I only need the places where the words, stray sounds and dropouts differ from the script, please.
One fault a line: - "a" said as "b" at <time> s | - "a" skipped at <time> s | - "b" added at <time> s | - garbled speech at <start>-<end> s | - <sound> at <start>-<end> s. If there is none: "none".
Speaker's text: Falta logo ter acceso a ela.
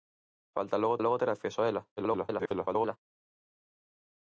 - "logo" added at 1.0 s
- garbled speech at 2.0-3.0 s